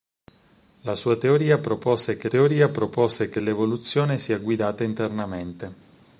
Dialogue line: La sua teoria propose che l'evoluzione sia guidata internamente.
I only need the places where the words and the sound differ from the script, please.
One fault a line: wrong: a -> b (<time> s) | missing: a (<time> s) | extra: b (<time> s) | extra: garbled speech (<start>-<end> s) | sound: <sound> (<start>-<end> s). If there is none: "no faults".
extra: teoria propose che (2.2 s)